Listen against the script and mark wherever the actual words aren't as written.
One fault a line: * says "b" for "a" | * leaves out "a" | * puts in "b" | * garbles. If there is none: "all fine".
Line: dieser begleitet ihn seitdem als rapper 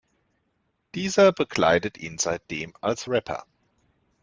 all fine